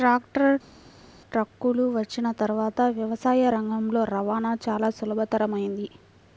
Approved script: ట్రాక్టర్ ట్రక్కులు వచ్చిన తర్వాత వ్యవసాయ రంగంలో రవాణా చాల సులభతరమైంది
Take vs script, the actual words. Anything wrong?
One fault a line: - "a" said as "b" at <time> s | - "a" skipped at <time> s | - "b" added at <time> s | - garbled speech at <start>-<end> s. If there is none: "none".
none